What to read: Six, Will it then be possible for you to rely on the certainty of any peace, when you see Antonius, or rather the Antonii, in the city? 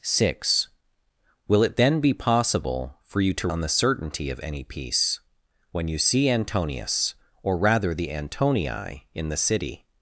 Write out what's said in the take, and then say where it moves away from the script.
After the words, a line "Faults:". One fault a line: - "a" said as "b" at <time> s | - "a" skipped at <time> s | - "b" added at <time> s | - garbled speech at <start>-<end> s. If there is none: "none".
Six, Will it then be possible for you to on the certainty of any peace, when you see Antonius, or rather the Antonii, in the city?
Faults:
- "rely" skipped at 3.5 s